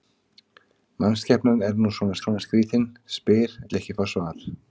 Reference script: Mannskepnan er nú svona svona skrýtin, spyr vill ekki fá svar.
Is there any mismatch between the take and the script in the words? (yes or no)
no